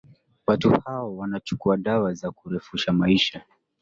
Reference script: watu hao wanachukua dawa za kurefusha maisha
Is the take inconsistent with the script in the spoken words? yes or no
no